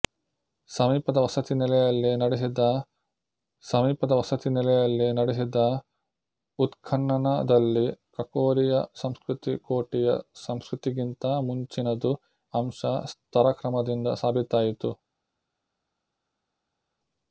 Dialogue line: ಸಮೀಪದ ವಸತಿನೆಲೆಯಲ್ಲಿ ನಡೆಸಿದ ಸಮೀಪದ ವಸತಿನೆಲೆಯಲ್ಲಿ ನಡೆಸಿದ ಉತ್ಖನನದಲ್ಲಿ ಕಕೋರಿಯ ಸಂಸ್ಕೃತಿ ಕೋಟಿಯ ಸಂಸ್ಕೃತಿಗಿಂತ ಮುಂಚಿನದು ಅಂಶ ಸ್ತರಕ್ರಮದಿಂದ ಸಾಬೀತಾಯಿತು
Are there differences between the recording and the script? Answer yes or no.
no